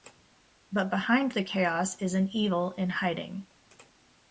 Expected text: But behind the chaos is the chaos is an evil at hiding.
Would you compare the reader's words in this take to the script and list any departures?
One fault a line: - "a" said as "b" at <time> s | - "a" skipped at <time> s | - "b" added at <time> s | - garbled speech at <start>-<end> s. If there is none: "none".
- "the chaos is" skipped at 2.1 s
- "at" said as "in" at 2.7 s